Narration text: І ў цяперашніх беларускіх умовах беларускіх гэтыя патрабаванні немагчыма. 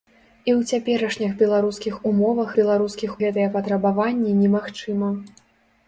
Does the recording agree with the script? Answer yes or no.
yes